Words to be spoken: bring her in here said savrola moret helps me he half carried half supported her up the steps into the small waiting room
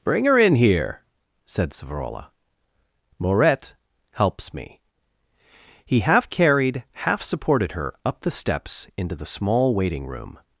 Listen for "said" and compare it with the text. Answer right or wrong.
right